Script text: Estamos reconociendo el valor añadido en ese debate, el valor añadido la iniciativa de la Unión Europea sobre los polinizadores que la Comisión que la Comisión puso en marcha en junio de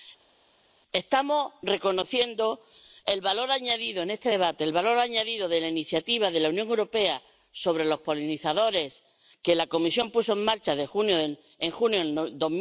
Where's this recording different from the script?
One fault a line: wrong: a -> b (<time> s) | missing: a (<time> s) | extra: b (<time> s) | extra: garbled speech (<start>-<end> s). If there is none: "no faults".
wrong: ese -> este (4.1 s)
extra: de (5.5 s)
missing: que la Comisión (10.1 s)